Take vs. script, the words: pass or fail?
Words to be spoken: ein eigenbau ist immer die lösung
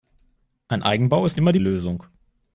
pass